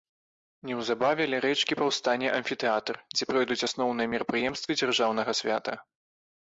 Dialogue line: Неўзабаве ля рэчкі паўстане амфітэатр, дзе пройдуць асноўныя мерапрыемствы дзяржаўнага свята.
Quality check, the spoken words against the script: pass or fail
pass